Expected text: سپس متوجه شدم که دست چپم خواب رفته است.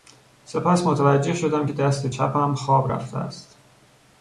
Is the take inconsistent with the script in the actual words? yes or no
no